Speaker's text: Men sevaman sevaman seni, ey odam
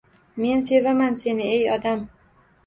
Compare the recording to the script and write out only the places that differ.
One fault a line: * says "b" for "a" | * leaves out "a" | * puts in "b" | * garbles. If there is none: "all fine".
* leaves out "sevaman"